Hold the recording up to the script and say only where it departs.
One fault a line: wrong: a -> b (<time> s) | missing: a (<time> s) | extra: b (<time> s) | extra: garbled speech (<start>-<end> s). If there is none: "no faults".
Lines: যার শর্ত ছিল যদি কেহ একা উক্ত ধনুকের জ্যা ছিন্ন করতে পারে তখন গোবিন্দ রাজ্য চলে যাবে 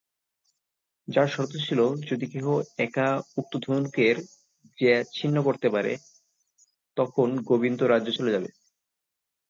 no faults